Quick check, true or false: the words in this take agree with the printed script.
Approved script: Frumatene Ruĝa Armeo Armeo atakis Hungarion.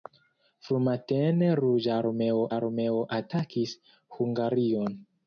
true